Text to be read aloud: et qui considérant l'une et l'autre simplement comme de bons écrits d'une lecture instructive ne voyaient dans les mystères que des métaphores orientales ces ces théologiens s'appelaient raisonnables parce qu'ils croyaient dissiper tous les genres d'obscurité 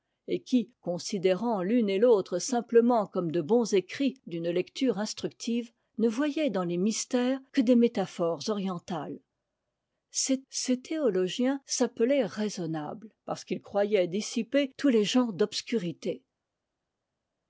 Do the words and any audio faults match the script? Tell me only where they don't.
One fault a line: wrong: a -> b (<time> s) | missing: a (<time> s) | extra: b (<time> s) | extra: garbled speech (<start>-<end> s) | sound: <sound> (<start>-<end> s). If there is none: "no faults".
no faults